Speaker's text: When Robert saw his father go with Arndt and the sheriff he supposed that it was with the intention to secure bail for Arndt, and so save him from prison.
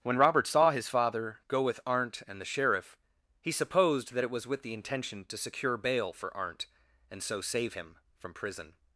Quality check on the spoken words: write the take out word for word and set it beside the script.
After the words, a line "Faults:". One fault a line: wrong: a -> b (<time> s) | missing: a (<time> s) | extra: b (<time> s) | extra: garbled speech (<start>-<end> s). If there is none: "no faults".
When Robert saw his father go with Arndt and the sheriff he supposed that it was with the intention to secure bail for Arndt, and so save him from prison.
Faults:
no faults